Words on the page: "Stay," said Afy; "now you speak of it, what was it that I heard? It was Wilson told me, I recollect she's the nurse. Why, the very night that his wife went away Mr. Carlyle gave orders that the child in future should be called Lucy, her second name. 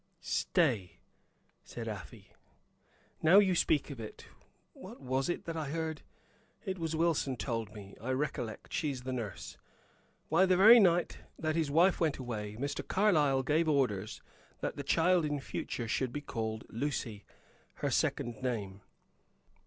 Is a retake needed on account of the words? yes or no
no